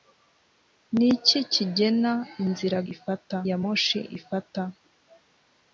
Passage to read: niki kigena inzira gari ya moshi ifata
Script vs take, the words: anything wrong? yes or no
yes